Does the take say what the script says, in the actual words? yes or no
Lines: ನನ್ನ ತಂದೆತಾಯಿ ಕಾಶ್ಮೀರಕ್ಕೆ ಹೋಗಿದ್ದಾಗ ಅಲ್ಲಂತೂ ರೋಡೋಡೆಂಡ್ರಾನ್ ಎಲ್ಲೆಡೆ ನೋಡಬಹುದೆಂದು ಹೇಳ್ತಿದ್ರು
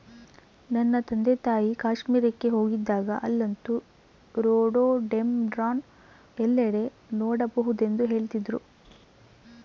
yes